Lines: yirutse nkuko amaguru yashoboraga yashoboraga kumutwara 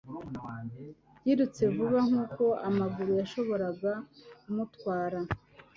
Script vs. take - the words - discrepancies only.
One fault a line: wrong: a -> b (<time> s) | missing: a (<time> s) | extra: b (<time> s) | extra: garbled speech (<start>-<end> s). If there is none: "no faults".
extra: vuba (1.8 s)
missing: yashoboraga (3.9 s)